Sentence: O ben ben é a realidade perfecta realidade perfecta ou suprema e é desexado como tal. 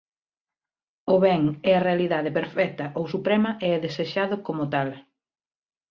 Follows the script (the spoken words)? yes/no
no